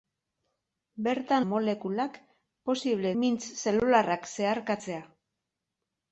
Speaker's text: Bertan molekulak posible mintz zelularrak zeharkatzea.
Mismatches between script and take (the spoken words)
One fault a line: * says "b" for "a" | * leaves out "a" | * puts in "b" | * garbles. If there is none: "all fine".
all fine